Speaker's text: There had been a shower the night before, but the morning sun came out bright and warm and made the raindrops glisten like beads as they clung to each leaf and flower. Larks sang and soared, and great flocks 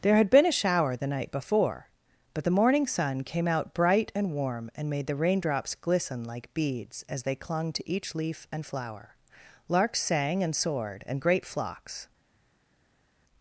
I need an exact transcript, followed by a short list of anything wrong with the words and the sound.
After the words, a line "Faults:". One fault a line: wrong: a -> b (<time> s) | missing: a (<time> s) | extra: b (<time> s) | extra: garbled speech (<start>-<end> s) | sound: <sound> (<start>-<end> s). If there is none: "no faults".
There had been a shower the night before, but the morning sun came out bright and warm and made the raindrops glisten like beads as they clung to each leaf and flower. Larks sang and soared, and great flocks
Faults:
no faults